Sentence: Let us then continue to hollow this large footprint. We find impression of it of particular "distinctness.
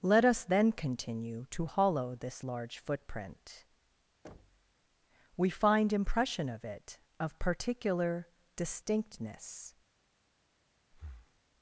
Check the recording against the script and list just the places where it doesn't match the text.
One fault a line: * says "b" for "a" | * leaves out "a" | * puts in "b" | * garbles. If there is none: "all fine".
all fine